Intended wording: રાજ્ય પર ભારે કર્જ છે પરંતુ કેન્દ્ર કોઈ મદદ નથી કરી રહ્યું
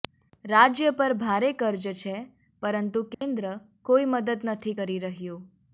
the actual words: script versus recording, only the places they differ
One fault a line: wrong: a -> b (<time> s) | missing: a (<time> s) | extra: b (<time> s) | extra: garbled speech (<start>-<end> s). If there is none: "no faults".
no faults